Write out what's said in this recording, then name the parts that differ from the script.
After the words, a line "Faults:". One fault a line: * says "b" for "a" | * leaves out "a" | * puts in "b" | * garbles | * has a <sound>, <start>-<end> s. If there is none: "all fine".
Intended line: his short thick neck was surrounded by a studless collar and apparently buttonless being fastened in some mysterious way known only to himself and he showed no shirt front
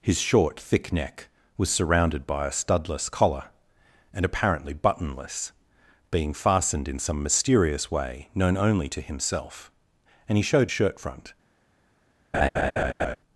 his short thick neck was surrounded by a studless collar and apparently buttonless being fastened in some mysterious way known only to himself and he showed shirt front
Faults:
* leaves out "no"
* has a laugh, 12.3-13.2 s